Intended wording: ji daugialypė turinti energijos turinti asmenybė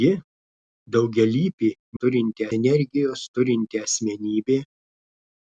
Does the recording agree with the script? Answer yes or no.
yes